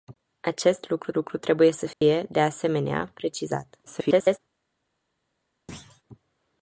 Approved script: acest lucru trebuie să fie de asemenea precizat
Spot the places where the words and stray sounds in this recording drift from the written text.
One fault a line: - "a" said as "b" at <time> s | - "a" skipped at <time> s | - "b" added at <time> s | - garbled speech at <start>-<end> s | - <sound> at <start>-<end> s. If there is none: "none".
- "lucru" added at 1.1 s
- dropout at 1.9-2.0 s
- garbled speech at 3.9-4.4 s
- thud at 5.7-6.0 s